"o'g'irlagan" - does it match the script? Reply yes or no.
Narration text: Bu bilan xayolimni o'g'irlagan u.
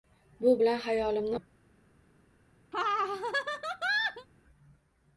no